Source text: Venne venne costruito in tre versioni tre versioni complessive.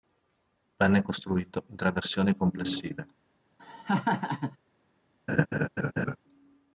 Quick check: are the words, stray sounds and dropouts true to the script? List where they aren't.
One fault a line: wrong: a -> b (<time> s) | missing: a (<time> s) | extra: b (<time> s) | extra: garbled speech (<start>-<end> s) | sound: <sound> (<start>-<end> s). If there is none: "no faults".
missing: venne (1.0 s)
missing: tre versioni (2.4 s)
sound: laugh (3.6-4.6 s)
sound: laugh (5.3-6.2 s)